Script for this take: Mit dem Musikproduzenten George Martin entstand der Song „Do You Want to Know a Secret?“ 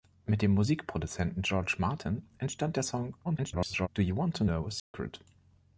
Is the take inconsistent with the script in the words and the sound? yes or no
yes